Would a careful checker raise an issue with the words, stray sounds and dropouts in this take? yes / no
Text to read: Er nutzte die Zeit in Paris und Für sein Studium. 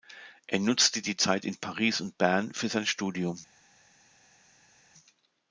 yes